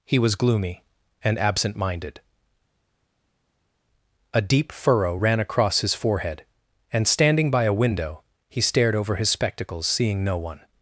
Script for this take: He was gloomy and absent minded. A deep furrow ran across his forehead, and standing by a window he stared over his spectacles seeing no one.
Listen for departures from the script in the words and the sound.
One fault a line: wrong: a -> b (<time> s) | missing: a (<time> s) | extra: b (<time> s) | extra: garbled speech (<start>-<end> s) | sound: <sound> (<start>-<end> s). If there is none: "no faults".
no faults